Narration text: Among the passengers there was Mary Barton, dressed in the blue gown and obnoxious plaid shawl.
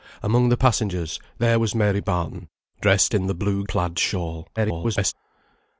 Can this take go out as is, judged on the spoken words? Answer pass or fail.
fail